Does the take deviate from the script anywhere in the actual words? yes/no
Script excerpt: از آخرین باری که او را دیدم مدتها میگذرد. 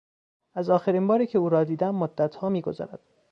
no